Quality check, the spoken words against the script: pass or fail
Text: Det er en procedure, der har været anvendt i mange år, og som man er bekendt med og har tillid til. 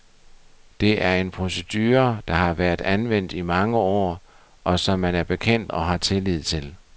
fail